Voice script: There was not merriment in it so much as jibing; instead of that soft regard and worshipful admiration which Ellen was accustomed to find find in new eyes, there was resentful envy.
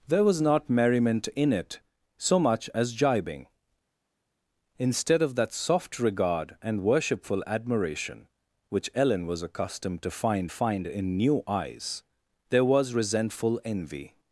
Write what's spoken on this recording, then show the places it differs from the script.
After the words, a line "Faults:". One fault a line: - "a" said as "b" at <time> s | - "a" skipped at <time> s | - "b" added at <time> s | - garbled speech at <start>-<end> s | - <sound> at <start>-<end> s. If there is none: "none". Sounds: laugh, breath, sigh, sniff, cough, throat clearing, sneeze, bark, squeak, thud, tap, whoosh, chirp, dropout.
There was not merriment in it so much as jibing; instead of that soft regard and worshipful admiration which Ellen was accustomed to find find in new eyes, there was resentful envy.
Faults:
none